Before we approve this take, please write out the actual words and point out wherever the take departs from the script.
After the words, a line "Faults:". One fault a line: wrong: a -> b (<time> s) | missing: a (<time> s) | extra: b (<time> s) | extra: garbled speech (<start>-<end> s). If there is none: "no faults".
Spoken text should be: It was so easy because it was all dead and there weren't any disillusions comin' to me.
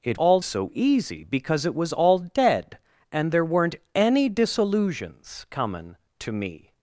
It all so easy because it was all dead and there weren't any disillusions comin' to me.
Faults:
wrong: was -> all (0.1 s)